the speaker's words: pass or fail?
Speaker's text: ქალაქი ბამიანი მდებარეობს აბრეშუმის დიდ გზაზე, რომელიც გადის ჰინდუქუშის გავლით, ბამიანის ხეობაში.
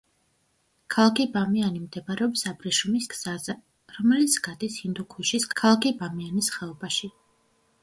fail